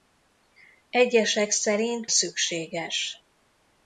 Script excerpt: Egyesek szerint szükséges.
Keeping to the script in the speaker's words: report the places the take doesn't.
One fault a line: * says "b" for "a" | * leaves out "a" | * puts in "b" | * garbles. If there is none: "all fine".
all fine